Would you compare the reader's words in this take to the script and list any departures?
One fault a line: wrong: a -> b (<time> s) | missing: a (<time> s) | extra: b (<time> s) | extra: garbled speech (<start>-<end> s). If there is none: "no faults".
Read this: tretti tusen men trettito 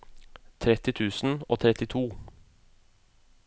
wrong: men -> og (1.5 s)